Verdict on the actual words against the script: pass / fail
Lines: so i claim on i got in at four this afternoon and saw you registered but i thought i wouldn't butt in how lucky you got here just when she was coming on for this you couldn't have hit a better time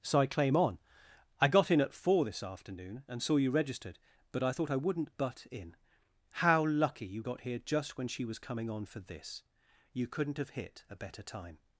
pass